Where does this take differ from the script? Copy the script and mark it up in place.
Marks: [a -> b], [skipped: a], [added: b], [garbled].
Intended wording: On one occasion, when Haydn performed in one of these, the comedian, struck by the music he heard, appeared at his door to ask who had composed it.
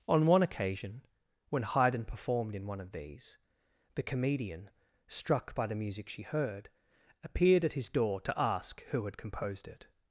On one occasion, when Haydn performed in one of these, the comedian, struck by the music [he -> she] heard, appeared at his door to ask who had composed it.